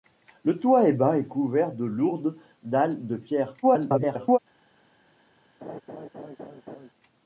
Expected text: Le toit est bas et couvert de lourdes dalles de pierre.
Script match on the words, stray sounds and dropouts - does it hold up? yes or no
no